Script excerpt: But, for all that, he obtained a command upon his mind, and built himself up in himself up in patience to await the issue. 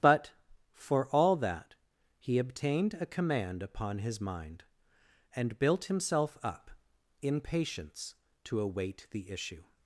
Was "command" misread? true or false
false